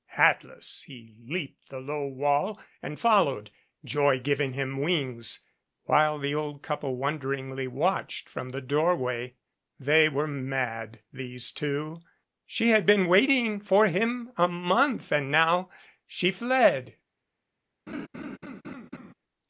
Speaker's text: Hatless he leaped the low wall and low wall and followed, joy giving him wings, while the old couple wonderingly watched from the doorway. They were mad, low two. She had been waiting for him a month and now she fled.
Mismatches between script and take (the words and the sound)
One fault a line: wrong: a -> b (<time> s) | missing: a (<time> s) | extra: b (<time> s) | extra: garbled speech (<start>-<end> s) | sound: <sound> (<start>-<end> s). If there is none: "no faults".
missing: low wall and (3.0 s)
wrong: low -> these (11.1 s)
sound: laugh (17.9-19.1 s)